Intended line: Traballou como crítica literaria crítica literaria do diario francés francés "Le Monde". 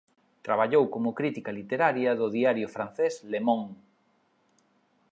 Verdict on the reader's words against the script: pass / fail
fail